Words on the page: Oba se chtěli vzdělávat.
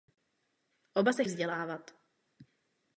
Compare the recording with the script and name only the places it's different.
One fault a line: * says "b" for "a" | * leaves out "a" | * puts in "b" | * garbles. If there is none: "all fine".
* leaves out "chtěli"